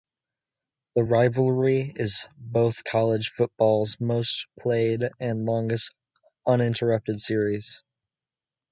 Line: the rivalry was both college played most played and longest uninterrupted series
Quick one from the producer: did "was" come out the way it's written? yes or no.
no